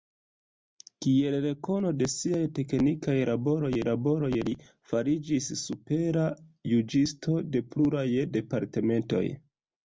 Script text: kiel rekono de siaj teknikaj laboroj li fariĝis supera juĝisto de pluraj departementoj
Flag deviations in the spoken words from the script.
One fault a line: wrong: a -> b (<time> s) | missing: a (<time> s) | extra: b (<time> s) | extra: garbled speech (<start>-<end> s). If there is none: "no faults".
extra: laboroj (3.9 s)